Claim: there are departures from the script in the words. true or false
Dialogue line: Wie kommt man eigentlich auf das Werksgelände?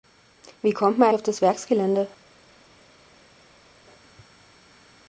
true